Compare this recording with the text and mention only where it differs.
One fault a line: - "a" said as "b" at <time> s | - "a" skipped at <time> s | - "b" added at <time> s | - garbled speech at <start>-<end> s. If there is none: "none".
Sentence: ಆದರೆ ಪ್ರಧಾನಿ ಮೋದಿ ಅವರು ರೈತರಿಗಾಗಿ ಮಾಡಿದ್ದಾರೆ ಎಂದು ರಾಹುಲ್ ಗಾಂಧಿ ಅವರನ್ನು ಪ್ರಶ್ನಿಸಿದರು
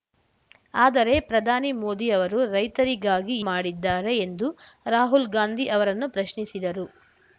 none